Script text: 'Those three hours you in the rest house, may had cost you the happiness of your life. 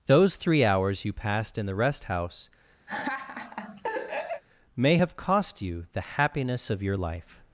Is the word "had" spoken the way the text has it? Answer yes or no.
no